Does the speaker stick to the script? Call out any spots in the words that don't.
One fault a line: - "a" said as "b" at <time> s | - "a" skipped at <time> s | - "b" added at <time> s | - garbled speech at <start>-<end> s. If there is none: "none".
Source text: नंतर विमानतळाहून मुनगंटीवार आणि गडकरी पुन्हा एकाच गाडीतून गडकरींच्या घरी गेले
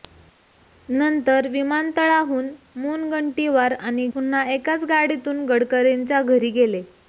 - "गडकरी" skipped at 4.1 s